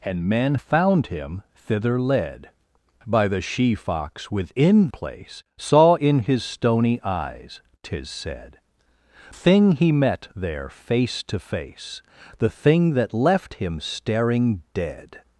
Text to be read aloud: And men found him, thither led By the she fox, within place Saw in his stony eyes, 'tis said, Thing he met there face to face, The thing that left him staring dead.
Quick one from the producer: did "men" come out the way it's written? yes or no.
yes